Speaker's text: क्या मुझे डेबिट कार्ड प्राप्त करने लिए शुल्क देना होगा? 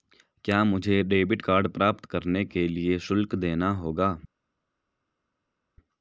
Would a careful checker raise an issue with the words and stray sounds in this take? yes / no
yes